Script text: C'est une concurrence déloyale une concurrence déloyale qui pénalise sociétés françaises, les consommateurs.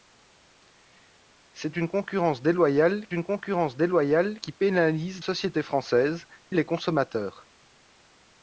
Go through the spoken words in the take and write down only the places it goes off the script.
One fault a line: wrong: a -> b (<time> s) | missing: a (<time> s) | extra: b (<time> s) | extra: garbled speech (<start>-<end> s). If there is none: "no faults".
no faults